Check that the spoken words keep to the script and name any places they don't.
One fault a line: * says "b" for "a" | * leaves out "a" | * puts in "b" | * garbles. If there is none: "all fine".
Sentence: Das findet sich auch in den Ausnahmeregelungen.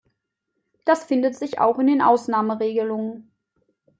all fine